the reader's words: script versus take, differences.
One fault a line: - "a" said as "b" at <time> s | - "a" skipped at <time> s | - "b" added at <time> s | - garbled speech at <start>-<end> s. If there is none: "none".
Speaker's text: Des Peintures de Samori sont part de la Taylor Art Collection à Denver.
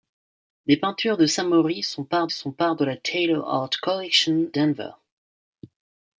- "sont part" added at 2.3 s
- "à" skipped at 4.5 s